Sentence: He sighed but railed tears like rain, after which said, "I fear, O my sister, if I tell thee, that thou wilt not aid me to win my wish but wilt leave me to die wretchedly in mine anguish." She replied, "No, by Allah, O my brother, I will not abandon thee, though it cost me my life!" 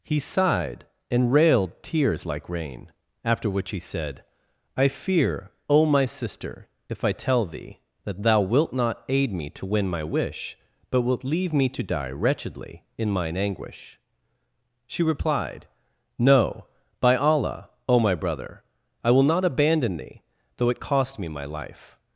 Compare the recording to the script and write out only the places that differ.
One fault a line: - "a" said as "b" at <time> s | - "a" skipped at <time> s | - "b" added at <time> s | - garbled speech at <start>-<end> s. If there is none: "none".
- "but" said as "and" at 1.1 s
- "he" added at 3.7 s